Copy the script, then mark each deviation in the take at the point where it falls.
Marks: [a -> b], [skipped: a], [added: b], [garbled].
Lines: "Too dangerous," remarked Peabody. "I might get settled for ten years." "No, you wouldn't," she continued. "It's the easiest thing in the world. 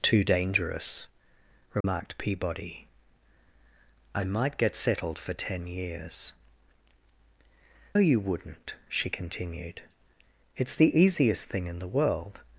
"Too dangerous," remarked Peabody. "I might get settled for ten years." [skipped: "No,] you wouldn't," she continued. "It's the easiest thing in the world.